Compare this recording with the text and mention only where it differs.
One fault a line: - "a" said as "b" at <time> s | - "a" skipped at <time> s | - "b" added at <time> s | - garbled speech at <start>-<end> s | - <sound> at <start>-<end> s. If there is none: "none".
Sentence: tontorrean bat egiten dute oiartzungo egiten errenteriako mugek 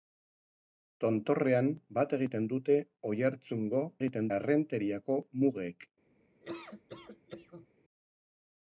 - laugh at 6.4-7.7 s